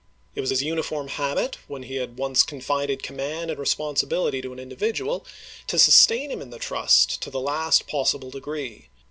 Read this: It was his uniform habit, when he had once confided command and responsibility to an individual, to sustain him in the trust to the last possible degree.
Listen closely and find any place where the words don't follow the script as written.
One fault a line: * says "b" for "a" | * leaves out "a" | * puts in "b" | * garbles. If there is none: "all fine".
all fine